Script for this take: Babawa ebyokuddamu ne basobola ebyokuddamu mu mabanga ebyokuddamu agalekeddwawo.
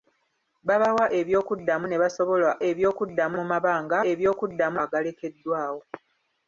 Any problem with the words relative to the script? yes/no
no